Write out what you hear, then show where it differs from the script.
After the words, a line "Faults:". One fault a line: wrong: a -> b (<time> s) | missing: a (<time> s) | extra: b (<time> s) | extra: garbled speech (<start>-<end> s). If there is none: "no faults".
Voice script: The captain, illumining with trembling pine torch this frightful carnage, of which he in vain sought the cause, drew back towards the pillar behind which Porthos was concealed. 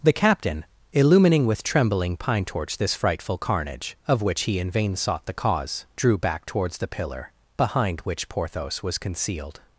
The captain, illumining with trembling pine torch this frightful carnage, of which he in vain sought the cause, drew back towards the pillar behind which Porthos was concealed.
Faults:
no faults